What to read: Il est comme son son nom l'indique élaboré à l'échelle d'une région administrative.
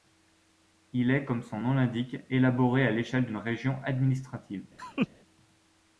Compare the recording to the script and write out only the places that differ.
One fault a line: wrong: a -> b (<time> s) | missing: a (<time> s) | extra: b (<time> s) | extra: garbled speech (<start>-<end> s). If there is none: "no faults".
missing: son (1.6 s)